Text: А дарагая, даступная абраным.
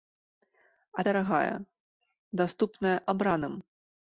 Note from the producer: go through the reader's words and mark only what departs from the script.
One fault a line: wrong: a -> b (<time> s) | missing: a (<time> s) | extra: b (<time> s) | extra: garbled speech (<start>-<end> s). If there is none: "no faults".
no faults